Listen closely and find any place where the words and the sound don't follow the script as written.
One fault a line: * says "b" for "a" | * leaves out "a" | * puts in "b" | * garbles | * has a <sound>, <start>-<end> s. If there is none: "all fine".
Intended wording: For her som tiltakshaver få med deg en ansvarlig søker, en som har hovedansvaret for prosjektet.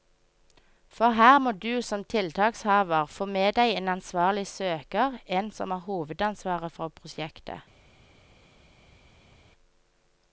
* puts in "må du"